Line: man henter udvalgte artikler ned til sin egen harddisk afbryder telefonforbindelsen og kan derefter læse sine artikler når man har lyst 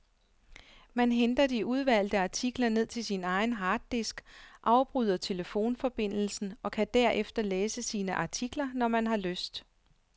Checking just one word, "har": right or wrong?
right